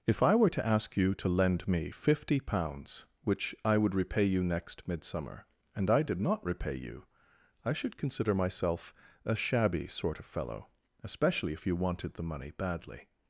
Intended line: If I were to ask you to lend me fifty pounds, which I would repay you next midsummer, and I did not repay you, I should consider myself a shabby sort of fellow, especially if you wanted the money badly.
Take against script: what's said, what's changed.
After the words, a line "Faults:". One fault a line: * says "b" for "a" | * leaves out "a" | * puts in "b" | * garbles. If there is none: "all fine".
If I were to ask you to lend me fifty pounds, which I would repay you next midsummer, and I did not repay you, I should consider myself a shabby sort of fellow, especially if you wanted the money badly.
Faults:
all fine